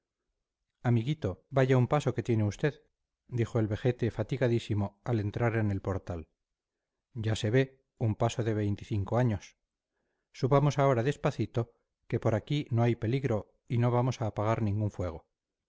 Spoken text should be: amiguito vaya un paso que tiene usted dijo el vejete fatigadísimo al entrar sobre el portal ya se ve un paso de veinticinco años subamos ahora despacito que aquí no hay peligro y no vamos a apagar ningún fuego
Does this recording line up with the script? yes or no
no